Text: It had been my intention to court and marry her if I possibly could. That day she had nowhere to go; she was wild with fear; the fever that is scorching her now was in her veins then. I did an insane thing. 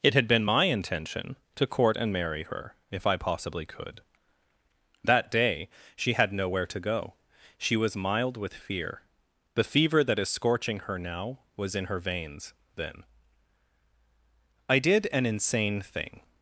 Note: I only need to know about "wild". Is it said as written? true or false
false